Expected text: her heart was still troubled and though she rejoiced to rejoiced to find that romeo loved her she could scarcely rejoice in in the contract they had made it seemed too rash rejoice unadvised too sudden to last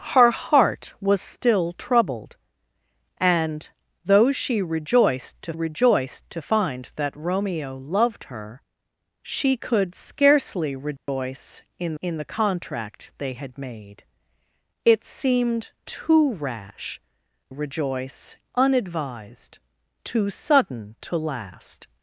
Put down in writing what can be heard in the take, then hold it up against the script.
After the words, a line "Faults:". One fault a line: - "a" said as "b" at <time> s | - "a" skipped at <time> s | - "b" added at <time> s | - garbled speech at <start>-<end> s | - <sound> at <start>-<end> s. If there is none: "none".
her heart was still troubled and though she rejoiced to rejoiced to find that romeo loved her she could scarcely rejoice in in the contract they had made it seemed too rash rejoice unadvised too sudden to last
Faults:
- dropout at 11.0-11.1 s